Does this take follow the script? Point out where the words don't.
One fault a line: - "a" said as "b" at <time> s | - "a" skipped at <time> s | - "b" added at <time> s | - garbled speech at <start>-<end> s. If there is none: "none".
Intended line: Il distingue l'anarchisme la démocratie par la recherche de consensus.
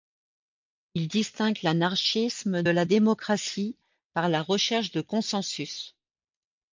none